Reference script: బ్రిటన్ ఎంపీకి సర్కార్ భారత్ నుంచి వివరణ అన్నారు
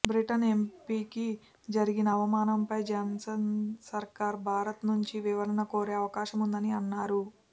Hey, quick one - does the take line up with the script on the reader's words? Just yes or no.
no